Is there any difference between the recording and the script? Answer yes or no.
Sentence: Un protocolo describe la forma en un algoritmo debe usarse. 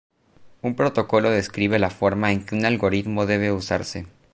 yes